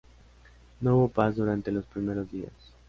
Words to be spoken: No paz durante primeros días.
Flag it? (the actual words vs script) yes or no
yes